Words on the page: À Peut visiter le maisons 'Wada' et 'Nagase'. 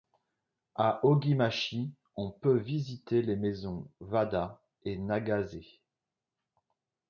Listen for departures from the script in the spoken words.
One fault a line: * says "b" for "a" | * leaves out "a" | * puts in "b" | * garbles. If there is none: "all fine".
* puts in "Ogimachi on"
* says "les" for "le"